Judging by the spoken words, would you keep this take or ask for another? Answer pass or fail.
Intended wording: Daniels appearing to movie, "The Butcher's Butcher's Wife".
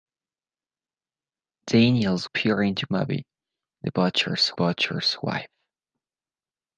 pass